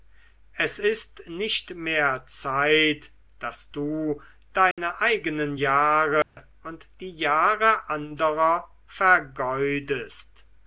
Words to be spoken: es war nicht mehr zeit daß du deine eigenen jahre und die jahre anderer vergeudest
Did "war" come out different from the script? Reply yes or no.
yes